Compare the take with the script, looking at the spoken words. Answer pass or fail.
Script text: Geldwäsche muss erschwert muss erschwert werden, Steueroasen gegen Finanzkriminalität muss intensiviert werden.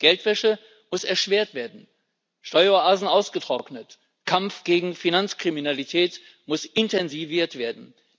fail